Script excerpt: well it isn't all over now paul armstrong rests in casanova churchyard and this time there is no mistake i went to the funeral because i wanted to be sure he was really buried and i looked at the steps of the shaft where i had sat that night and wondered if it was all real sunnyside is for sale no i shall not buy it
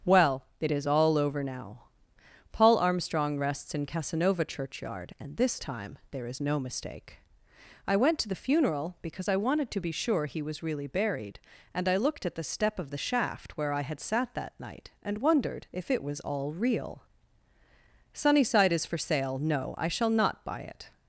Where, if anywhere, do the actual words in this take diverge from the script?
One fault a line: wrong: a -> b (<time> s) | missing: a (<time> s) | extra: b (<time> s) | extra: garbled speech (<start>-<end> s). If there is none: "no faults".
wrong: isn't -> is (0.7 s)
wrong: steps -> step (12.4 s)